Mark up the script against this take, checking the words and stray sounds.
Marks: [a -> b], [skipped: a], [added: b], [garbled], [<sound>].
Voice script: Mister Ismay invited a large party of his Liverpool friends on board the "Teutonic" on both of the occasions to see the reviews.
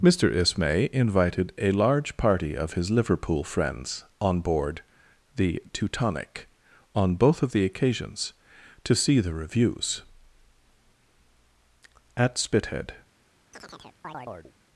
Mister Ismay invited a large party of his Liverpool friends on board the "Teutonic" on both of the occasions to see the reviews. [added: At Spithead] [chirp]